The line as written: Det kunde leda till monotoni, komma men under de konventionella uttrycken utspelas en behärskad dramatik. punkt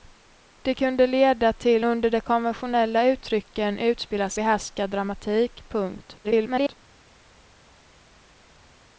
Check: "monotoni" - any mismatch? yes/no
yes